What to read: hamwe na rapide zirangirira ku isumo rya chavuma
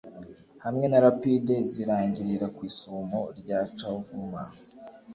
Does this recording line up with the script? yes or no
yes